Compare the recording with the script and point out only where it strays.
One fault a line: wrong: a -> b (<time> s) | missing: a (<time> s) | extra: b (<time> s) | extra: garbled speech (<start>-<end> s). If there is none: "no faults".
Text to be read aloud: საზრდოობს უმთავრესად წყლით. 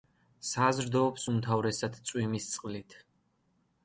extra: წვიმის (2.1 s)